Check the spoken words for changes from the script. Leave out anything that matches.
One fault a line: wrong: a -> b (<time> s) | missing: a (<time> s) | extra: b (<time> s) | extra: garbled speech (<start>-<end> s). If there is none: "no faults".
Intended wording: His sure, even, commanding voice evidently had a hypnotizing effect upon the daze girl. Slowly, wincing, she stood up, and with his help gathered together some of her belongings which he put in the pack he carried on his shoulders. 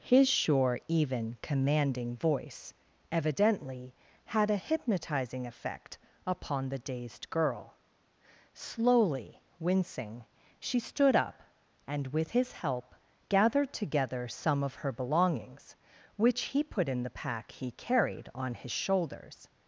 wrong: daze -> dazed (6.8 s)